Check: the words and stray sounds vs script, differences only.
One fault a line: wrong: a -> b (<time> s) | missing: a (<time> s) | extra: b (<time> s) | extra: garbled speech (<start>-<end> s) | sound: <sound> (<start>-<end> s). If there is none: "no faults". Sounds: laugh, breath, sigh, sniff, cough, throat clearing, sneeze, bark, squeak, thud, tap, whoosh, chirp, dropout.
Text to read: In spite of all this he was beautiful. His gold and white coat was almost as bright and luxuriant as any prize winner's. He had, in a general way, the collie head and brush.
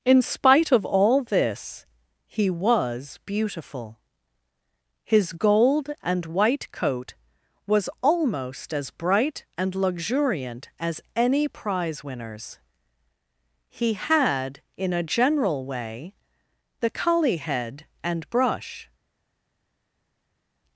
no faults